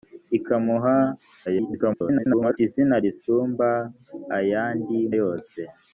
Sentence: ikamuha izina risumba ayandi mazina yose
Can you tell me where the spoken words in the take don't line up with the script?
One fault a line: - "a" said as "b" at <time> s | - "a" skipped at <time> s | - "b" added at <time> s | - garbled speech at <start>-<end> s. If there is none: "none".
- garbled speech at 1.5-2.6 s
- "mazina" skipped at 5.0 s